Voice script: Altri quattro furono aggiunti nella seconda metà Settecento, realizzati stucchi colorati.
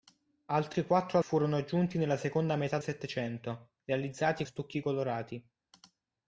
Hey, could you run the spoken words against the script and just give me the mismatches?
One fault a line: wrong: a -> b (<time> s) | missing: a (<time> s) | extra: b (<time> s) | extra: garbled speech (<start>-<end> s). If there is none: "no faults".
no faults